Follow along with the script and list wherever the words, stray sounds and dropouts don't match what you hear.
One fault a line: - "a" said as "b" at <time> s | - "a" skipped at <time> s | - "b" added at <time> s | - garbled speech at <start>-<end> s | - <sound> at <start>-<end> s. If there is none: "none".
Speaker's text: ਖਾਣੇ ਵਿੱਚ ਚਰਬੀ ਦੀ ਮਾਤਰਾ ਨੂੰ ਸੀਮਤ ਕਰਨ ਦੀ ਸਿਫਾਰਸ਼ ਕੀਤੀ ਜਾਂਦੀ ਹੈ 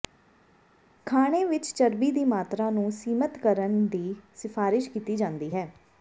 none